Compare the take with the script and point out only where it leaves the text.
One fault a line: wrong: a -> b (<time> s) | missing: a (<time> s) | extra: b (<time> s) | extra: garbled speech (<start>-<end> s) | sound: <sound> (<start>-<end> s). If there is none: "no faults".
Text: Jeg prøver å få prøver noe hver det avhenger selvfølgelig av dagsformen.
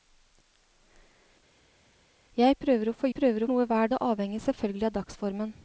no faults